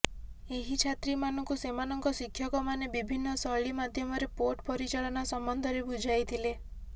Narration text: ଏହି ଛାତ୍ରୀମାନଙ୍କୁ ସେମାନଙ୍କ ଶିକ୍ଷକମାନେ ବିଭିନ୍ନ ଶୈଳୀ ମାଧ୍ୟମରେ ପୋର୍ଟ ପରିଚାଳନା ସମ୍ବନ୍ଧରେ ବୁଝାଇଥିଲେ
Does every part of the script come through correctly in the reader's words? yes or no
yes